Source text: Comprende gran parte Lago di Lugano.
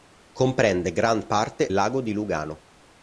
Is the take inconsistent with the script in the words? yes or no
no